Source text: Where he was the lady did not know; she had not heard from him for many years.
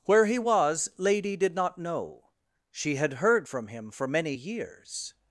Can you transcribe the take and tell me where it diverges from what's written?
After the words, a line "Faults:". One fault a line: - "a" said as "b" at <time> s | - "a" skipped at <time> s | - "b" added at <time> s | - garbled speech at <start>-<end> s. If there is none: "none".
Where he was lady did not know; she had heard from him for many years.
Faults:
- "the" skipped at 0.9 s
- "not" skipped at 3.1 s